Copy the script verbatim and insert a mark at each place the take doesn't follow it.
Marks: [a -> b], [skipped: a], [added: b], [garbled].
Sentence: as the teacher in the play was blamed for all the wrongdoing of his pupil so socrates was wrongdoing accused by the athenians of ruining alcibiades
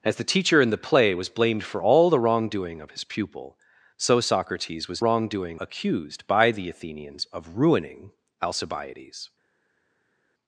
as the teacher in the play was blamed for all the wrongdoing of his pupil so socrates was wrongdoing accused by the athenians of ruining alcibiades